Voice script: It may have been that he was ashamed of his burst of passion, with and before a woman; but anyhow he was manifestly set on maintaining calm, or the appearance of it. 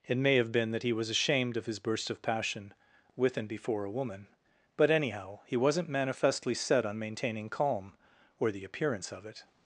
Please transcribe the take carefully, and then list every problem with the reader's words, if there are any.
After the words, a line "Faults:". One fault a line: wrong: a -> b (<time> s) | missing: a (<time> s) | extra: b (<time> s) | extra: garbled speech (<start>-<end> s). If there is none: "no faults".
It may have been that he was ashamed of his burst of passion, with and before a woman; but anyhow he wasn't manifestly set on maintaining calm, or the appearance of it.
Faults:
wrong: was -> wasn't (5.6 s)